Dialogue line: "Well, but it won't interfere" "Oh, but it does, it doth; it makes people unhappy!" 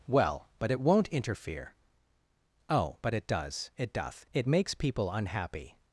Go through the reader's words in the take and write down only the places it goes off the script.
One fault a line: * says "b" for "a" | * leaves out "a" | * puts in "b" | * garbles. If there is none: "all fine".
all fine